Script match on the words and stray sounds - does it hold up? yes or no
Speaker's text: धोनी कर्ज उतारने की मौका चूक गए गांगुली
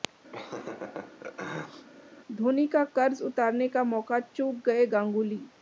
no